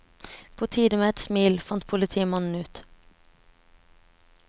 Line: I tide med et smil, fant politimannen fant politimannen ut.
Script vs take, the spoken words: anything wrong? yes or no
yes